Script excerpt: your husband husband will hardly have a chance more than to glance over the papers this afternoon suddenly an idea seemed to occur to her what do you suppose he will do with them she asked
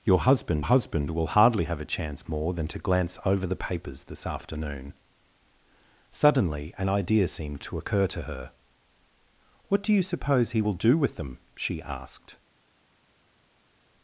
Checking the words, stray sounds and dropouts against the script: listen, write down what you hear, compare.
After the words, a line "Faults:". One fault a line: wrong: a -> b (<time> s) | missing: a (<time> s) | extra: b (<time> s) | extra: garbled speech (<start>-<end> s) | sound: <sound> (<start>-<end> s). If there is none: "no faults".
your husband husband will hardly have a chance more than to glance over the papers this afternoon suddenly an idea seemed to occur to her what do you suppose he will do with them she asked
Faults:
no faults